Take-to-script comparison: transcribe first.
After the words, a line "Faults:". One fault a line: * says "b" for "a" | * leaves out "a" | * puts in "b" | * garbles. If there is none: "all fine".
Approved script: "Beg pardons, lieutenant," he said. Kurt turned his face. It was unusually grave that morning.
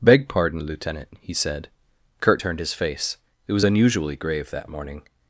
"Beg pardon, lieutenant," he said. Kurt turned his face. It was unusually grave that morning.
Faults:
* says "pardon" for "pardons"